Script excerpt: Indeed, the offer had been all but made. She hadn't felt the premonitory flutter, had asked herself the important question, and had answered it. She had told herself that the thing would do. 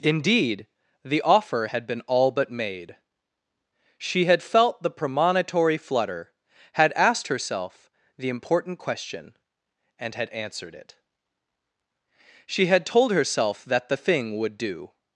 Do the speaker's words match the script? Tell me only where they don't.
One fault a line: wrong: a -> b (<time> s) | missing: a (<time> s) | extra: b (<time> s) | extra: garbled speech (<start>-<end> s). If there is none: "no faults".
wrong: hadn't -> had (4.2 s)